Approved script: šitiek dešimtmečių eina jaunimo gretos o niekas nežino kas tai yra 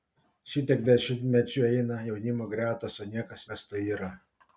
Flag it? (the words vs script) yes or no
yes